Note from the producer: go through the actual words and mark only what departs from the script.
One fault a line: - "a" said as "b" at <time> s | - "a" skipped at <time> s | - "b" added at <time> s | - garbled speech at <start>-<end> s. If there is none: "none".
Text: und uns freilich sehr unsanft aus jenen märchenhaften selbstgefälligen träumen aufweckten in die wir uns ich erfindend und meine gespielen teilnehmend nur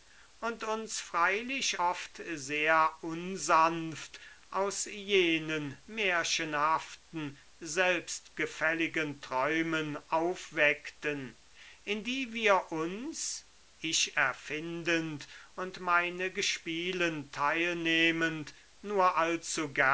- "oft" added at 1.8 s